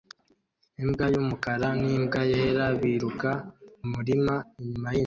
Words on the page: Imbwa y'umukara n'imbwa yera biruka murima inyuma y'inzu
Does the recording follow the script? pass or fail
pass